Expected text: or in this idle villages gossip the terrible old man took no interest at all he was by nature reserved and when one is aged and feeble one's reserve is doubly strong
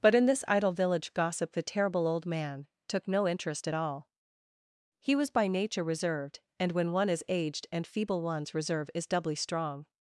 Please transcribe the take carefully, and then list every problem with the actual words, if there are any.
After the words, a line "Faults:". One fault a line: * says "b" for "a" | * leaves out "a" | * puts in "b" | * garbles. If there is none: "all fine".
but in this idle village gossip the terrible old man took no interest at all he was by nature reserved and when one is aged and feeble one's reserve is doubly strong
Faults:
* says "but" for "or"
* says "village" for "villages"